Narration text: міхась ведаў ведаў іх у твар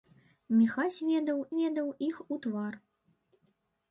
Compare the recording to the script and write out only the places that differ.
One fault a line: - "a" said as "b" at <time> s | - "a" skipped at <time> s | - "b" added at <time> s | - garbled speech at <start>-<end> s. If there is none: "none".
none